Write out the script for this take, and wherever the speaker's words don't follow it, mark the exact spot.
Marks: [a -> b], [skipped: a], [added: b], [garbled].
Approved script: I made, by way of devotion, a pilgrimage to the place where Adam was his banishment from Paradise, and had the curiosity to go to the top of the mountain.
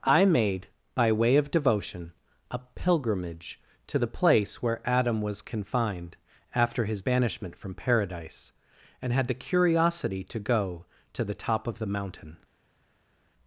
I made, by way of devotion, a pilgrimage to the place where Adam was [added: confined after] his banishment from Paradise, and had the curiosity to go to the top of the mountain.